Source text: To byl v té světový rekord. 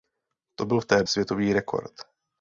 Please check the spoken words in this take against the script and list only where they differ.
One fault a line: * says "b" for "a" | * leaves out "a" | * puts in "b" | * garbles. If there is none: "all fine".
all fine